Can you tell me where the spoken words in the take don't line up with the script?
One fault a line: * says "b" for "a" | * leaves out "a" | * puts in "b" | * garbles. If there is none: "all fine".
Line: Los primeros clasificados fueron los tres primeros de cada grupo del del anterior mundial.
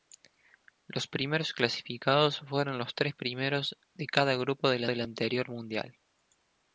all fine